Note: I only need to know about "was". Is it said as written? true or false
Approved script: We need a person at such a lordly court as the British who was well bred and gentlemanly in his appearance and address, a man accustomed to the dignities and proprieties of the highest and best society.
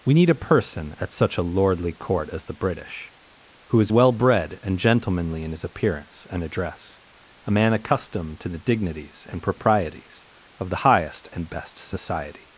false